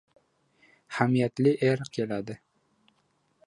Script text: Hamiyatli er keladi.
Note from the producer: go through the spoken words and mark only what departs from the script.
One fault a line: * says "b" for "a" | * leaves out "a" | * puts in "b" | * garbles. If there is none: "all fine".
all fine